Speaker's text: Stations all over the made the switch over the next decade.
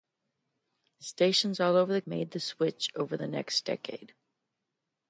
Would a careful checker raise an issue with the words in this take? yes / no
no